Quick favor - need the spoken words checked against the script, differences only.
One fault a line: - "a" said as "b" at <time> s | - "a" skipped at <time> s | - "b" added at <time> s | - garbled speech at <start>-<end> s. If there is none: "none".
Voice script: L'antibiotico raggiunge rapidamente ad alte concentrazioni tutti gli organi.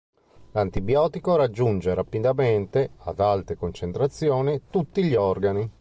none